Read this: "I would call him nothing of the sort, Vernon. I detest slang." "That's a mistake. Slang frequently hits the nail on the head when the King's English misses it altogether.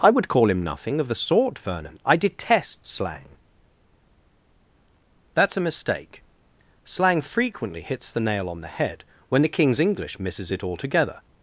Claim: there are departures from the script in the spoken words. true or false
false